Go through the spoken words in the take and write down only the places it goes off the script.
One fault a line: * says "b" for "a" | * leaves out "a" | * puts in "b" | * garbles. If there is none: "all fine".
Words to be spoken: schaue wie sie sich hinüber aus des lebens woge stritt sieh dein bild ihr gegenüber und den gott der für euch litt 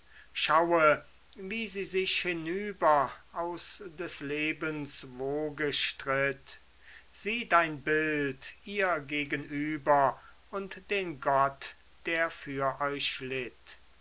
all fine